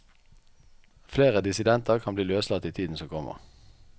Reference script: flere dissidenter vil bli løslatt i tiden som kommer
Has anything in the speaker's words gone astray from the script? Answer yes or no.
yes